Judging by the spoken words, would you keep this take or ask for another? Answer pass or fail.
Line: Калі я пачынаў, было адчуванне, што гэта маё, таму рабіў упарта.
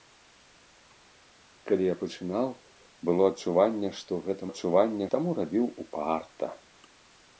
fail